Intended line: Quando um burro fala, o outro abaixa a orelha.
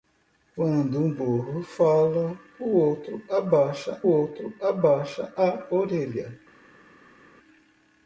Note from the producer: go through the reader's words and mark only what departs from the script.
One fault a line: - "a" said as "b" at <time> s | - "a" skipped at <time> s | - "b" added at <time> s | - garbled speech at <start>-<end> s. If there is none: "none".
- "outro abaixa" added at 4.1 s